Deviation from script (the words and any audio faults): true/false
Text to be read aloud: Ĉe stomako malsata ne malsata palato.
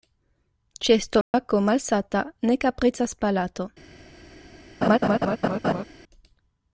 true